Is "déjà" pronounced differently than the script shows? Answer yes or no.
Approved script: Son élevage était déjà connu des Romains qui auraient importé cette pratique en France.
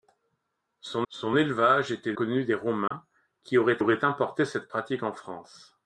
yes